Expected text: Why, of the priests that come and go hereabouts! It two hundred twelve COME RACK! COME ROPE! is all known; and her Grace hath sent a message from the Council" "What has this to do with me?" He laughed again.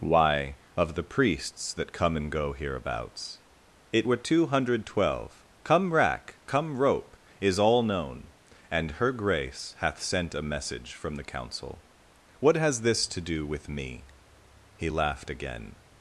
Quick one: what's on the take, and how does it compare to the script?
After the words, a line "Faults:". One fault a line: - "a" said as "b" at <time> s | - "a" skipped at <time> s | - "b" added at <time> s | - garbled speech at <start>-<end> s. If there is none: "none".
Why, of the priests that come and go hereabouts! It were two hundred twelve COME RACK! COME ROPE! is all known; and her Grace hath sent a message from the Council" "What has this to do with me?" He laughed again.
Faults:
- "were" added at 4.0 s